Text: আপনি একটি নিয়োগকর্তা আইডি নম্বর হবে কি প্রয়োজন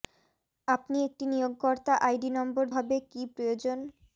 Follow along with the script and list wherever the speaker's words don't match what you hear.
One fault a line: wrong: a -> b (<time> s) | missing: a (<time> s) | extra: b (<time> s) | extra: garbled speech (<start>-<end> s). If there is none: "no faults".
no faults